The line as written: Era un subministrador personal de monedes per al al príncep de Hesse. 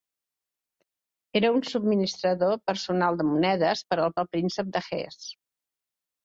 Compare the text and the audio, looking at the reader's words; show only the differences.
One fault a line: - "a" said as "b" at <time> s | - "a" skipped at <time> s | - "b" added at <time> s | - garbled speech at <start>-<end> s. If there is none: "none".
none